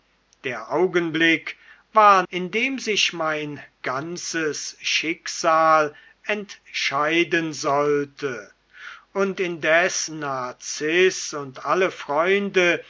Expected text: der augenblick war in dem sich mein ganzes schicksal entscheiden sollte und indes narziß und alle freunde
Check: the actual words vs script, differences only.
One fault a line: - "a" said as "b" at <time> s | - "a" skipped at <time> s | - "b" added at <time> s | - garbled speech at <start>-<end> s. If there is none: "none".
none